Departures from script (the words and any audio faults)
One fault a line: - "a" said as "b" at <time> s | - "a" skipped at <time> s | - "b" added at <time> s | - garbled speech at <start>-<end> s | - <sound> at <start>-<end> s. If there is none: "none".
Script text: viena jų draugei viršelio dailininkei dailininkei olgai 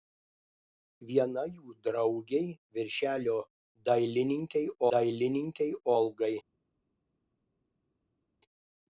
none